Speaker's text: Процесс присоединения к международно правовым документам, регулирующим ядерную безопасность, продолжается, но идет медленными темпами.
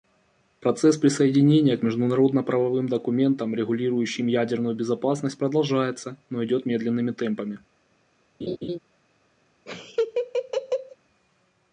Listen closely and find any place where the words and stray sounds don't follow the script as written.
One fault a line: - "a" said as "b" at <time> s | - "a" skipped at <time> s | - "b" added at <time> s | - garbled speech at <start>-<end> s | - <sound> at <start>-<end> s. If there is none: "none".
- laugh at 8.4-8.8 s
- laugh at 9.7-11.0 s